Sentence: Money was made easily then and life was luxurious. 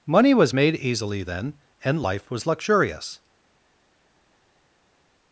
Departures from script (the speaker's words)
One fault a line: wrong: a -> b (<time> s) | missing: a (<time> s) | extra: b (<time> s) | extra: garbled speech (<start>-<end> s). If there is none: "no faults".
no faults